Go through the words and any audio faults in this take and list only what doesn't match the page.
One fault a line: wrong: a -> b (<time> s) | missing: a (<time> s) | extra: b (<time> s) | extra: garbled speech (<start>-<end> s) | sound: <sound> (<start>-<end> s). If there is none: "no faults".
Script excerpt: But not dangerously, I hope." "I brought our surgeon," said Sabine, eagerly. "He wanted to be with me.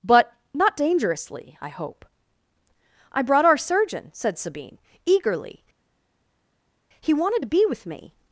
no faults